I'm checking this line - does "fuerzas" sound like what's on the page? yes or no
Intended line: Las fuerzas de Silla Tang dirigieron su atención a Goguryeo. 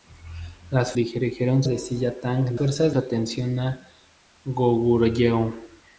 no